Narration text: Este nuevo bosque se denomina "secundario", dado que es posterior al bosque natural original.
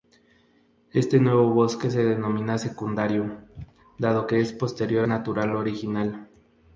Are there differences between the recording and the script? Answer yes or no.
yes